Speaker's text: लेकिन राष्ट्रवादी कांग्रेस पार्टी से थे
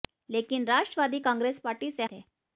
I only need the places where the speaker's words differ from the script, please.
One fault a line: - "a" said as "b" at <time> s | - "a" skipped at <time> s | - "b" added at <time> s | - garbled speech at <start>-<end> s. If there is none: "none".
none